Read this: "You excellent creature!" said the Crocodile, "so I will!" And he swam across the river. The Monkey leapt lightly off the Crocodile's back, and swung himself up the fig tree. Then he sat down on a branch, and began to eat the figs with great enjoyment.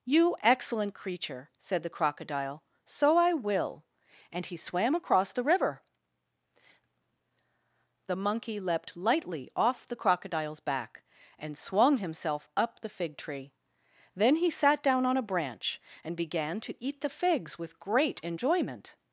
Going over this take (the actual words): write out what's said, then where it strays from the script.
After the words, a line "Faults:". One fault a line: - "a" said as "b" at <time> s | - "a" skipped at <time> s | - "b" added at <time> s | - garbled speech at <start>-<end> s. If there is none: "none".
"You excellent creature!" said the Crocodile, "so I will!" And he swam across the river. The Monkey leapt lightly off the Crocodile's back, and swung himself up the fig tree. Then he sat down on a branch, and began to eat the figs with great enjoyment.
Faults:
none